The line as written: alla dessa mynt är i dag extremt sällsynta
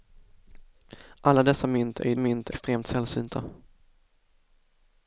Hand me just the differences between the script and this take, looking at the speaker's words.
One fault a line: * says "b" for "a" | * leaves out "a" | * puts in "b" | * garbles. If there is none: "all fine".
* says "mynt" for "dag"